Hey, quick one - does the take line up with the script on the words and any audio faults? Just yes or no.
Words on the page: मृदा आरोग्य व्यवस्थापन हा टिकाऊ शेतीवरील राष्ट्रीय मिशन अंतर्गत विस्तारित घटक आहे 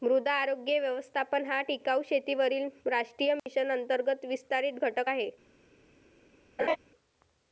no